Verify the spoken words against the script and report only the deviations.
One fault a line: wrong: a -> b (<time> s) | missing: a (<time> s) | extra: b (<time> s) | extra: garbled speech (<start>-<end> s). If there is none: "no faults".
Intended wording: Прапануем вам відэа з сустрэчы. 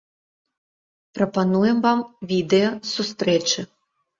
no faults